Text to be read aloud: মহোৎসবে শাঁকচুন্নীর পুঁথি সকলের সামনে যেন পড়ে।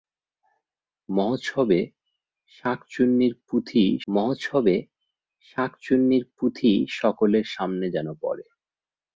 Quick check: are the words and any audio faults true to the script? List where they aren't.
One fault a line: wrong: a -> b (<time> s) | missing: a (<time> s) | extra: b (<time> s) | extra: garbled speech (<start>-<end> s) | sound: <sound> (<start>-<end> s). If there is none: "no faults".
extra: মহোৎসবে শাঁকচুন্নীর পুঁথি (4.1 s)